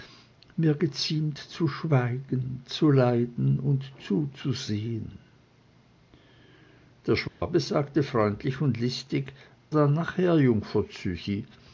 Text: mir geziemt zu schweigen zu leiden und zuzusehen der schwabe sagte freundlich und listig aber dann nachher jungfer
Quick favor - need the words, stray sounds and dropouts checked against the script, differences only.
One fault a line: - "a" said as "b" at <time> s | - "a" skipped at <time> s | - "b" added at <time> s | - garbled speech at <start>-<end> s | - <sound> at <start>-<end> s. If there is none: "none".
- dropout at 7.3-7.4 s
- "aber" skipped at 9.3 s